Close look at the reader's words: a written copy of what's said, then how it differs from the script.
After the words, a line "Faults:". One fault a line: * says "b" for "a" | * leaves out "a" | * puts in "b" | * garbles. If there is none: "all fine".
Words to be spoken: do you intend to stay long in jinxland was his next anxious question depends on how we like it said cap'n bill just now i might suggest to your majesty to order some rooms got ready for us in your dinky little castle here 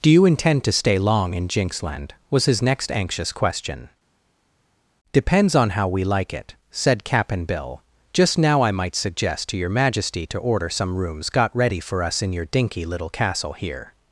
do you intend to stay long in jinxland was his next anxious question depends on how we like it said cap'n bill just now i might suggest to your majesty to order some rooms got ready for us in your dinky little castle here
Faults:
all fine